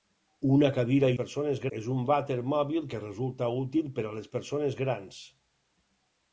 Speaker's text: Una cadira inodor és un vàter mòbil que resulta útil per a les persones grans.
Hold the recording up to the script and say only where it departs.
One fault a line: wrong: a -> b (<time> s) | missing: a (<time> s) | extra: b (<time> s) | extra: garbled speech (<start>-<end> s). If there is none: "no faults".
wrong: inodor -> persones (1.2 s)